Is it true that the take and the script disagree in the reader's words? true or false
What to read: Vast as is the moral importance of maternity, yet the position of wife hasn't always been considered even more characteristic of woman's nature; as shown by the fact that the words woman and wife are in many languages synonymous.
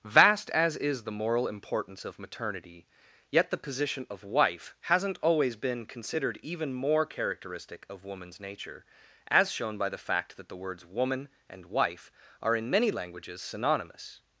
false